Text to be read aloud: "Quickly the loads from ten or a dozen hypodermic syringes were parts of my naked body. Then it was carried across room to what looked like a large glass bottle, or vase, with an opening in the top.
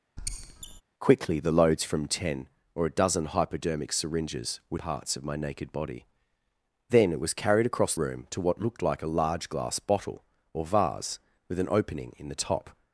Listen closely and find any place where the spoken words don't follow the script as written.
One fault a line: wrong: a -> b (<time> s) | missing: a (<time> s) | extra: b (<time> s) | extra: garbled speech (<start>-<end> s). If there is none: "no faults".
no faults